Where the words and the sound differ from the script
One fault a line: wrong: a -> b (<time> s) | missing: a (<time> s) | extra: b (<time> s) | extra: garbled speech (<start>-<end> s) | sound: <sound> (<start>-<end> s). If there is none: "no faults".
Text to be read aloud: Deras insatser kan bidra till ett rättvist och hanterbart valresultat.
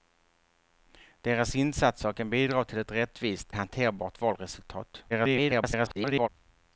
missing: och (3.5 s)
extra: garbled speech (5.1-6.3 s)